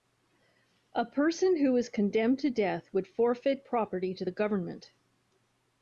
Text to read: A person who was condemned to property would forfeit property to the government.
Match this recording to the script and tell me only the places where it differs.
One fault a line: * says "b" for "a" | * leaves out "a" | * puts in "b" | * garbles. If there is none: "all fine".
* says "death" for "property"